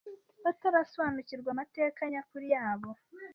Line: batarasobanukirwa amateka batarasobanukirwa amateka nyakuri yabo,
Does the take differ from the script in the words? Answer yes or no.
yes